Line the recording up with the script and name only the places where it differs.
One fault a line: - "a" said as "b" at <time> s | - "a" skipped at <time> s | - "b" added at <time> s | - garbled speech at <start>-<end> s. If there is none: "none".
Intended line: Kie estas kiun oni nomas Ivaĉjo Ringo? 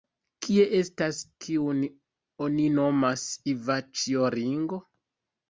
none